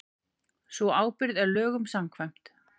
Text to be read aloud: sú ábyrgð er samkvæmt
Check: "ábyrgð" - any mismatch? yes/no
no